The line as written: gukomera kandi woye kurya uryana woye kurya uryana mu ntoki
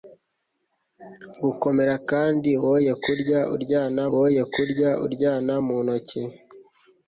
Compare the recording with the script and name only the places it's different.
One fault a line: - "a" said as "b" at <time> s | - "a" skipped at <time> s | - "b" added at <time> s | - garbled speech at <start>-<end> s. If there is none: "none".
none